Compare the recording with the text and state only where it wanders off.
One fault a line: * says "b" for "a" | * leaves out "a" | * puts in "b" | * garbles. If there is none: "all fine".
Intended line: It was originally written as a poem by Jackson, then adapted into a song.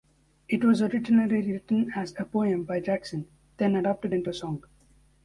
all fine